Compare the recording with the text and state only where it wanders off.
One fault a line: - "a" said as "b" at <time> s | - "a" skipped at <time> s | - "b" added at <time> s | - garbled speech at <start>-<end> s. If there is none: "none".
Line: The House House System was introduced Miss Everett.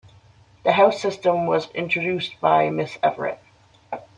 - "House" skipped at 1.0 s
- "by" added at 2.4 s